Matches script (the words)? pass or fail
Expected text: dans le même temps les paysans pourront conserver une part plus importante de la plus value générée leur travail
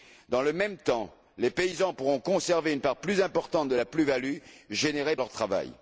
pass